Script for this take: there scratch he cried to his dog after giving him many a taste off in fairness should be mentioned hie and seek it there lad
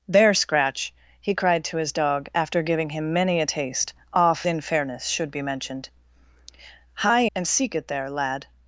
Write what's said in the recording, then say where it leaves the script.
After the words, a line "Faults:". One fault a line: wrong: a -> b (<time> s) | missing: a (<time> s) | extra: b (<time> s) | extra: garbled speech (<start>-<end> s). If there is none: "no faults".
there scratch he cried to his dog after giving him many a taste off in fairness should be mentioned hie and seek it there lad
Faults:
no faults